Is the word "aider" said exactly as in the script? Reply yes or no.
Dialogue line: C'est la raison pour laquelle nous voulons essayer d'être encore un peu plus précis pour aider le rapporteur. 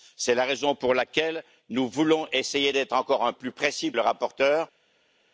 no